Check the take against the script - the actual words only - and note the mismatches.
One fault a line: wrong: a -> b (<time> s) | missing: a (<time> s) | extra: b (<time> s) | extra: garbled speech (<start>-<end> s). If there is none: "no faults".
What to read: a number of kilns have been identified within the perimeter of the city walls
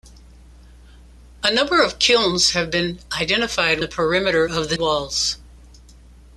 missing: within (3.8 s)
missing: city (4.8 s)